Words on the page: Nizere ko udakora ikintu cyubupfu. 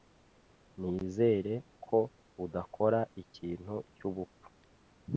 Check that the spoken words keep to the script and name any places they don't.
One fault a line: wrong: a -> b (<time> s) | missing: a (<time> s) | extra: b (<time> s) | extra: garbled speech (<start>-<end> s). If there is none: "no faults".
no faults